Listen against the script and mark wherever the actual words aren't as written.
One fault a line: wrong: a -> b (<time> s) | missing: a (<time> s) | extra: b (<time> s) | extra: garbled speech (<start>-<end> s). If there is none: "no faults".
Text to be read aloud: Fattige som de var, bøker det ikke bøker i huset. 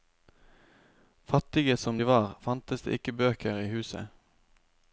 wrong: bøker -> fantes (2.4 s)